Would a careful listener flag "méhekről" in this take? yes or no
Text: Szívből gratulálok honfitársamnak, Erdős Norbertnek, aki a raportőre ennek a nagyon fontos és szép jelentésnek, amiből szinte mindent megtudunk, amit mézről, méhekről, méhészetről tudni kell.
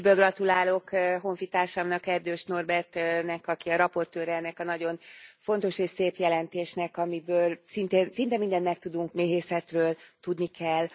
yes